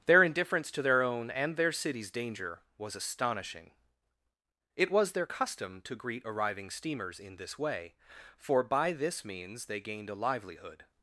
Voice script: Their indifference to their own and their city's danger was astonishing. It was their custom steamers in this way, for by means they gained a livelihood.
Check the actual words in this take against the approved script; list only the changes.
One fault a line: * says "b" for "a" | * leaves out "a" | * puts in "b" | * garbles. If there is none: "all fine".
* puts in "to greet arriving"
* puts in "this"